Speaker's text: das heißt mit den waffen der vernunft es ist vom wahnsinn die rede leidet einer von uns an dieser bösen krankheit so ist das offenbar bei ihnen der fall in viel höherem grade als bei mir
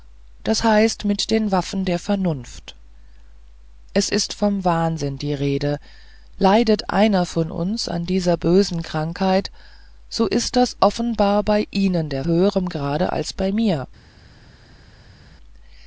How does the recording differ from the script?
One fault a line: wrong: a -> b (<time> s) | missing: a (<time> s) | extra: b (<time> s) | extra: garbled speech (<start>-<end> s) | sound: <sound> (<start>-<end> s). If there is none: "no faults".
missing: fall in viel (12.2 s)